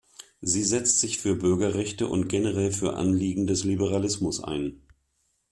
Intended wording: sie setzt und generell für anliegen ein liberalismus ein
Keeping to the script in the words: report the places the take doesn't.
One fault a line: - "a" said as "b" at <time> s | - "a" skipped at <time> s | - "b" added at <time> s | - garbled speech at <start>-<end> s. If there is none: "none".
- "sich für bürgerrechte" added at 1.0 s
- "ein" said as "des" at 3.5 s